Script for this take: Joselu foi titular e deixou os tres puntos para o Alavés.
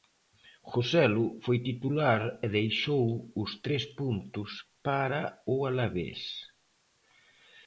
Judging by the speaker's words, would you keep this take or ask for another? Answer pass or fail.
pass